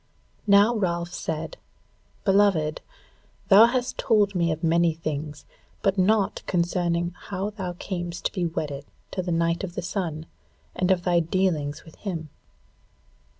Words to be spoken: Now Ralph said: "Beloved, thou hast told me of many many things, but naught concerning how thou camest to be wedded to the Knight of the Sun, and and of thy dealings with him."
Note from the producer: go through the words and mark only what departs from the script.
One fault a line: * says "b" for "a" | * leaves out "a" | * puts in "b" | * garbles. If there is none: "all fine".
* leaves out "many"
* leaves out "and"